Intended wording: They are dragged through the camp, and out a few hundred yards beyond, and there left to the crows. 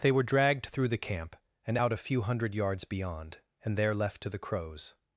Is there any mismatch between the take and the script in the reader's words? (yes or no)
yes